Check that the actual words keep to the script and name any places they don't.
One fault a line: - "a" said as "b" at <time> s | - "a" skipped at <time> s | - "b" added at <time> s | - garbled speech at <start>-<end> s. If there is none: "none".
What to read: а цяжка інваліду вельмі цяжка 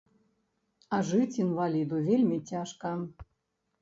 - "цяжка" said as "жыць" at 1.1 s